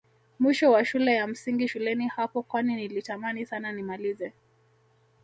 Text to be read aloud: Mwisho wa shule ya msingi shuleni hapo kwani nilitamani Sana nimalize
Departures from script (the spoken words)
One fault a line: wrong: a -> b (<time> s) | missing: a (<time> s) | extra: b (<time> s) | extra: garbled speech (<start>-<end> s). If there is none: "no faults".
no faults